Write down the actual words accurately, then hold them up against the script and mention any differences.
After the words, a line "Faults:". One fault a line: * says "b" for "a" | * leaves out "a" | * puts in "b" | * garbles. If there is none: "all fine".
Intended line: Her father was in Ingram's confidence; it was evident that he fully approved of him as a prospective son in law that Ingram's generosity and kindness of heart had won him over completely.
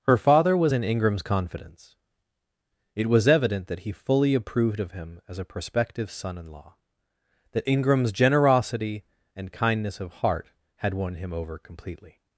Her father was in Ingram's confidence; it was evident that he fully approved of him as a prospective son in law that Ingram's generosity and kindness of heart had won him over completely.
Faults:
all fine